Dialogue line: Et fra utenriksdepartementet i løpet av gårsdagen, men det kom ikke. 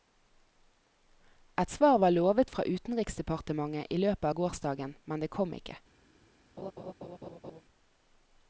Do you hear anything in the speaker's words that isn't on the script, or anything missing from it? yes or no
yes